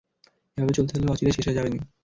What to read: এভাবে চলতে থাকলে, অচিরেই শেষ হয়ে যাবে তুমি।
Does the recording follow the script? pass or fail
pass